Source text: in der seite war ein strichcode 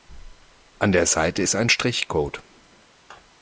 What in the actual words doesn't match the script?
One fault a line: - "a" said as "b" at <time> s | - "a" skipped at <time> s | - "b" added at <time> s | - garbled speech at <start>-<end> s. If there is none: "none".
- "in" said as "an" at 0.8 s
- "war" said as "ist" at 1.4 s